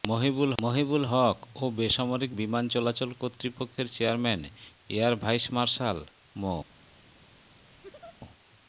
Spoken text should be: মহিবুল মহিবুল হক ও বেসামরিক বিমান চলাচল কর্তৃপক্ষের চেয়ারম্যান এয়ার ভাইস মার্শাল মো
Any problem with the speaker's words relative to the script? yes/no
no